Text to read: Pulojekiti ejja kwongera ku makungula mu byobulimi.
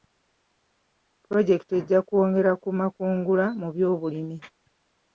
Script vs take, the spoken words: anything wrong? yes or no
no